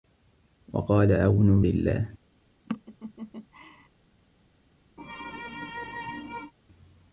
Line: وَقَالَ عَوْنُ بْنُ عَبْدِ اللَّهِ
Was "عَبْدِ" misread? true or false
true